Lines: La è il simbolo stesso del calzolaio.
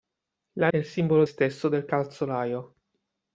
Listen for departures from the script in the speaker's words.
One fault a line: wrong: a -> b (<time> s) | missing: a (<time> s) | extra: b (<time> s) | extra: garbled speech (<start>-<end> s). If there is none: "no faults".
no faults